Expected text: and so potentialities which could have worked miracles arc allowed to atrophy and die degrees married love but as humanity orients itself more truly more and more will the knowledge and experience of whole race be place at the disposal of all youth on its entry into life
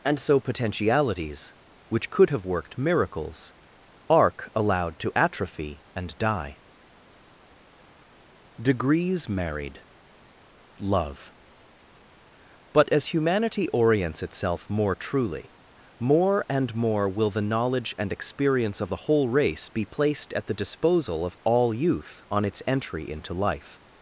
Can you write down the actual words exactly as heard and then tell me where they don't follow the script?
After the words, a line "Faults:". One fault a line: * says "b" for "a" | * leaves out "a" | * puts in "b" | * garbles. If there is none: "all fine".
and so potentialities which could have worked miracles arc allowed to atrophy and die degrees married love but as humanity orients itself more truly more and more will the knowledge and experience of the whole race be placed at the disposal of all youth on its entry into life
Faults:
* puts in "the"
* says "placed" for "place"